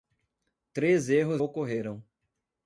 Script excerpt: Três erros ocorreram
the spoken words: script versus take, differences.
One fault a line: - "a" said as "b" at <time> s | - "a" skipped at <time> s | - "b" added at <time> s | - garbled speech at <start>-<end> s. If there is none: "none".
none